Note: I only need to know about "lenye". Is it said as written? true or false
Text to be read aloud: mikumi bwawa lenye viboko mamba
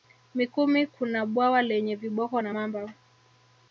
true